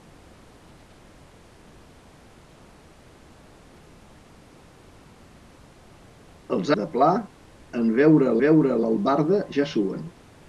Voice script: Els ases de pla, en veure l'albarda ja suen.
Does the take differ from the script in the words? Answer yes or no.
yes